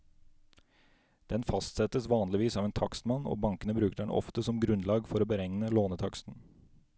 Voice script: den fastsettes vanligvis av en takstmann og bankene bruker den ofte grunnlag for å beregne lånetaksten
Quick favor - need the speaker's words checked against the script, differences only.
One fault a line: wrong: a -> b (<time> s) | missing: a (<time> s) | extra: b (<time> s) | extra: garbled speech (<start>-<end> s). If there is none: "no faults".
extra: som (4.5 s)